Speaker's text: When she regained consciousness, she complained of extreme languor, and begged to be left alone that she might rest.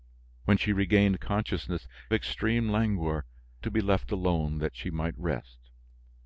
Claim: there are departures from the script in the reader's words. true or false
true